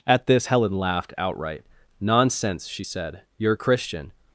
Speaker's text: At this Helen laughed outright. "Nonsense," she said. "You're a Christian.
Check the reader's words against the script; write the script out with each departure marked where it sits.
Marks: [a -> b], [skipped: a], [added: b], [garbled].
At this Helen laughed outright. "Nonsense," she said. "You're a Christian.